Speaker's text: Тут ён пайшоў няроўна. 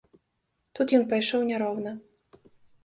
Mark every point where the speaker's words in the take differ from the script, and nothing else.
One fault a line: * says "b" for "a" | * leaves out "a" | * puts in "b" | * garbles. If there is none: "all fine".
all fine